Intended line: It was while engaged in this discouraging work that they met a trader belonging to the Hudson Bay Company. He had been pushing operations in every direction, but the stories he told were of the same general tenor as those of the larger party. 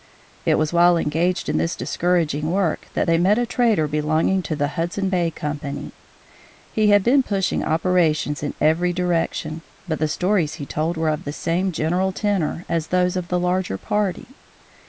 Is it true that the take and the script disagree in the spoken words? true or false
false